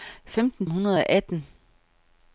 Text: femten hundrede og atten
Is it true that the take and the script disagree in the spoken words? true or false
false